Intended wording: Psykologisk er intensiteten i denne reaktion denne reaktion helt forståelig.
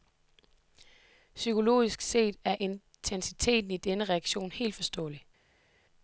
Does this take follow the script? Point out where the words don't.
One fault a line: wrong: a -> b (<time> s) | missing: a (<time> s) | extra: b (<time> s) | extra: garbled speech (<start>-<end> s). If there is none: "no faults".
extra: set (2.0 s)
missing: denne reaktion (4.5 s)